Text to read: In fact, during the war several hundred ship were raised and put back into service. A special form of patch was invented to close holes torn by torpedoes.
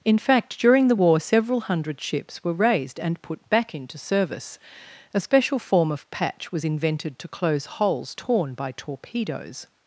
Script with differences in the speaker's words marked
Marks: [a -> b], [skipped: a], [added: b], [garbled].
In fact, during the war several hundred [ship -> ships] were raised and put back into service. A special form of patch was invented to close holes torn by torpedoes.